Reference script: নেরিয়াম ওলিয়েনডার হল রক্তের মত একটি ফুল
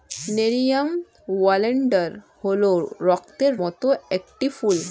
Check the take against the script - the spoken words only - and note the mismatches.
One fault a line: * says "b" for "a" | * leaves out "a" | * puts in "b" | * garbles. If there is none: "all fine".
all fine